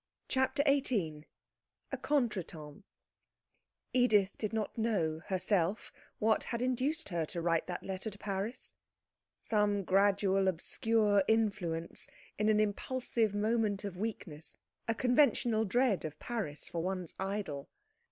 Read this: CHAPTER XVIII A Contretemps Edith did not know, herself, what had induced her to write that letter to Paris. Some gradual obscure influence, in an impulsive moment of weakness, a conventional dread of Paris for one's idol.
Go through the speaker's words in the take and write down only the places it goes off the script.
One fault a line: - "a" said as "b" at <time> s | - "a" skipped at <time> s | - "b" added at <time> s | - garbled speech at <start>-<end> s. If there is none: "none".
none